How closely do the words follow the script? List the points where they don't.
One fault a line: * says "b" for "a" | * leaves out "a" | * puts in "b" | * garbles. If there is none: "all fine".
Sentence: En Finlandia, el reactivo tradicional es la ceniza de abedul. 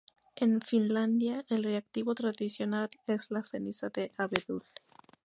all fine